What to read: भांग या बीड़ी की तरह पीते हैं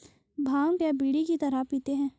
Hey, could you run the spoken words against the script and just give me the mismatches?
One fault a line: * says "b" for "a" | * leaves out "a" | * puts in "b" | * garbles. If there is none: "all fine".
all fine